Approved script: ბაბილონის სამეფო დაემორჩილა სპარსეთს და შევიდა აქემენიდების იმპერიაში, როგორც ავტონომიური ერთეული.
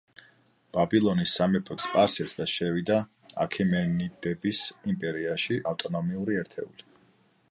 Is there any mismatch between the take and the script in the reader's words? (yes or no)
yes